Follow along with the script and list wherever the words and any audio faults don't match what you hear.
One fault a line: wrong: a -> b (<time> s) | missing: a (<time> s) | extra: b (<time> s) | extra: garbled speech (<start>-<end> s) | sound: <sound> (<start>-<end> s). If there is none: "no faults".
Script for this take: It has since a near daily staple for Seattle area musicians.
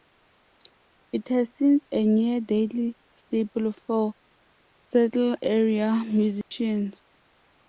sound: dropout (6.4-6.5 s)